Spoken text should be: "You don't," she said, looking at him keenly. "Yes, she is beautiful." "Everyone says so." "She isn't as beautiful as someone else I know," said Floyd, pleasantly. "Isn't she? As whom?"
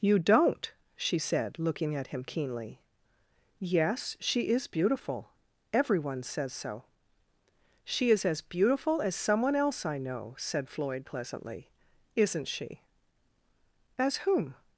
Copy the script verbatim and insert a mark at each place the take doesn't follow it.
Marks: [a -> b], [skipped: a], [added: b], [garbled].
"You don't," she said, looking at him keenly. "Yes, she is beautiful." "Everyone says so." "She [isn't -> is] as beautiful as someone else I know," said Floyd, pleasantly. "Isn't she? As whom?"